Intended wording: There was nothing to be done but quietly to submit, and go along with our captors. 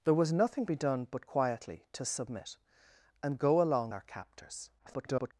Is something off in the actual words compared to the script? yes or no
yes